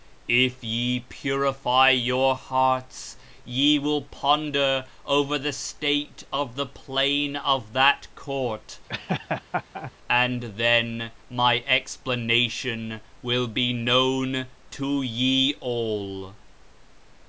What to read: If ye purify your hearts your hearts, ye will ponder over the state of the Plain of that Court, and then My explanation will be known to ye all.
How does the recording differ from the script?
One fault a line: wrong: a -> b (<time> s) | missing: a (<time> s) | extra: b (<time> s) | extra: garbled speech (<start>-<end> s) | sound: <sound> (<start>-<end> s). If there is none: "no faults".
missing: your hearts (3.2 s)
sound: laugh (8.9-9.9 s)